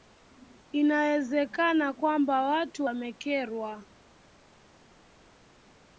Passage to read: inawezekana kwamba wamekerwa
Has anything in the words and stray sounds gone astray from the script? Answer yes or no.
yes